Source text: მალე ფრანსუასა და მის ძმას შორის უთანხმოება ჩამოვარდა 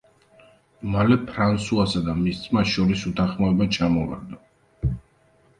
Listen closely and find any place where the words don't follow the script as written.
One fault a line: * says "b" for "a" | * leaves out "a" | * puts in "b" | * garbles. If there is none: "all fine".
all fine